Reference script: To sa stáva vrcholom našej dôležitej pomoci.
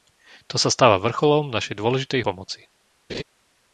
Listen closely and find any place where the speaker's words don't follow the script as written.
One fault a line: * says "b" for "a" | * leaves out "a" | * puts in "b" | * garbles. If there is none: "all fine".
all fine